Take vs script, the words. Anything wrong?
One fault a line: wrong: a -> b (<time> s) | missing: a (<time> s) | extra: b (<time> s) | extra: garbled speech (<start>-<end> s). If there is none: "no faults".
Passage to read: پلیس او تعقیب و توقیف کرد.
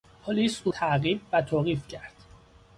no faults